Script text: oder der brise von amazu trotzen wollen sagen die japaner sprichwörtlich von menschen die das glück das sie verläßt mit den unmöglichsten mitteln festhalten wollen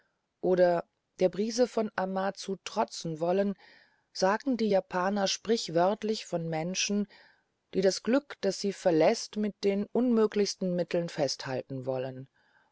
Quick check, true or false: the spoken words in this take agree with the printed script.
true